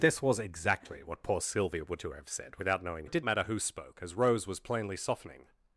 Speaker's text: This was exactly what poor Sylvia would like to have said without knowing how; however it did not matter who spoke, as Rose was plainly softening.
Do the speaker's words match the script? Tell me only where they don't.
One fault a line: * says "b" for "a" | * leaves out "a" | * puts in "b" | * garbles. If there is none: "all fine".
* leaves out "like"
* leaves out "how however"
* leaves out "not"